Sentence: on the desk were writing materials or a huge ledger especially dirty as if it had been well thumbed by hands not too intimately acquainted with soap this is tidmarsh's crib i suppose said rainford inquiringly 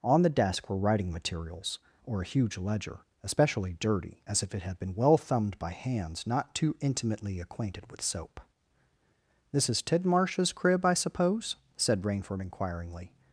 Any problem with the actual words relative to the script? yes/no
no